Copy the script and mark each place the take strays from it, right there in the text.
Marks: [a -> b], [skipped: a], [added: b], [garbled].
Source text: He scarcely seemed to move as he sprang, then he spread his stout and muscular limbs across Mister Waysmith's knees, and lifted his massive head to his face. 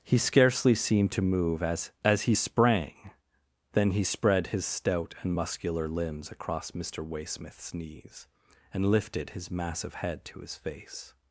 He scarcely seemed to move as [added: as] he sprang, then he spread his stout and muscular limbs across Mister Waysmith's knees, and lifted his massive head to his face.